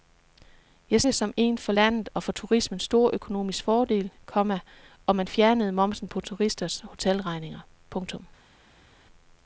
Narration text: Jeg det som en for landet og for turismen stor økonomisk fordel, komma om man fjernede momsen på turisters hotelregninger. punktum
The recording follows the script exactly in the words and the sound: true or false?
true